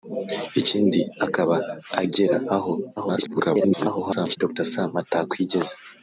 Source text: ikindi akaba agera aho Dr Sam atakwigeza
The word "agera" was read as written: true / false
true